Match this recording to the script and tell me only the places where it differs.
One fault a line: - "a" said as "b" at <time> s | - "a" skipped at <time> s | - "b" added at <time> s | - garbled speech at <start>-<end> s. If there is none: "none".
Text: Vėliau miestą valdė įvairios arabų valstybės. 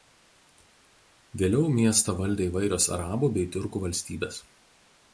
- "bei tiurkų" added at 3.4 s